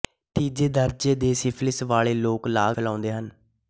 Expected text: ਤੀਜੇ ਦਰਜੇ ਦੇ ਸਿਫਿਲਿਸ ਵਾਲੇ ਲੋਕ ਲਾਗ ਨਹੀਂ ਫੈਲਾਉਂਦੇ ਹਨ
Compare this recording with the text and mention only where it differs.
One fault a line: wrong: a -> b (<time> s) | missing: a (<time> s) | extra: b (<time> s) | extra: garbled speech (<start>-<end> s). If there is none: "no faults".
missing: ਨਹੀਂ (2.8 s)